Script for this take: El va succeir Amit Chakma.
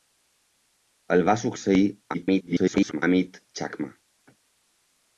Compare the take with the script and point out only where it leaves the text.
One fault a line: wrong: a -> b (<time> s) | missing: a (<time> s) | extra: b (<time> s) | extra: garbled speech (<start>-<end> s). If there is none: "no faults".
extra: garbled speech (2.1-3.0 s)